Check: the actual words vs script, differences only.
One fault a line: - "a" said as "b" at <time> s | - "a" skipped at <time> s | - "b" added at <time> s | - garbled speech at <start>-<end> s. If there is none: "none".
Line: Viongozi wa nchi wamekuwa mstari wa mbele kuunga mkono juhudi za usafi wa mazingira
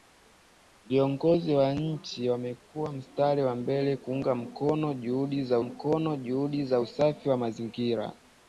- "mkono juhudi za" added at 5.6 s